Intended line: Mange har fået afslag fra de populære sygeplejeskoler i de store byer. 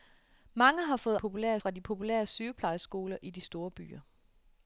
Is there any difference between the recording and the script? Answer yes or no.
yes